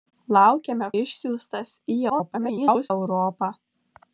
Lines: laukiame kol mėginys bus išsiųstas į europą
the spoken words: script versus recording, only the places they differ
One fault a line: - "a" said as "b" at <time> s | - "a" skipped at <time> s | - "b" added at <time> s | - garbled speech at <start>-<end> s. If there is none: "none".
- "kol mėginys bus" skipped at 0.9 s
- garbled speech at 2.1-2.9 s